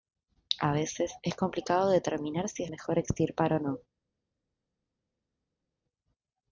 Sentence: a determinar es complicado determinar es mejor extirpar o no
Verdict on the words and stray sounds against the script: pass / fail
fail